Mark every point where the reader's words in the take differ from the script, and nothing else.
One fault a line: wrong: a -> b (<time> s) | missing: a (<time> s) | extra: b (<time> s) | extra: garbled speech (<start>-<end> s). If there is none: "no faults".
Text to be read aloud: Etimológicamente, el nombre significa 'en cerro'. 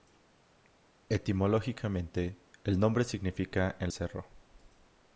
no faults